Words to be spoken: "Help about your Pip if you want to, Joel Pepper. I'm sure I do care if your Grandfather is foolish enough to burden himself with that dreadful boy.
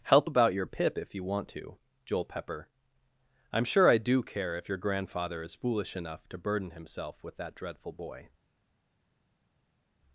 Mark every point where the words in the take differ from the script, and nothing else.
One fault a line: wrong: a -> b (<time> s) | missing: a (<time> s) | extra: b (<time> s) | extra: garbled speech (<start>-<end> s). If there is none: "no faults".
no faults